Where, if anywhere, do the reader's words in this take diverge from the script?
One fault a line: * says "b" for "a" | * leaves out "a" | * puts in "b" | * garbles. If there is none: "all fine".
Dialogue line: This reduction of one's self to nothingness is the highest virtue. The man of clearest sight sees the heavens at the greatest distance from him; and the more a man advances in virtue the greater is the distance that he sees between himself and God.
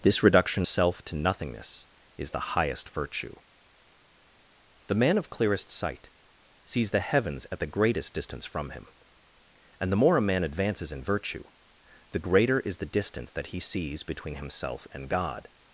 * leaves out "of one's"